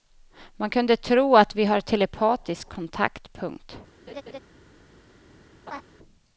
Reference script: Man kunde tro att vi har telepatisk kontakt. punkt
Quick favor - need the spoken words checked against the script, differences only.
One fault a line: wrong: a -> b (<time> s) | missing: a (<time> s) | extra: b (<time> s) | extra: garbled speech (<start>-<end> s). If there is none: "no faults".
no faults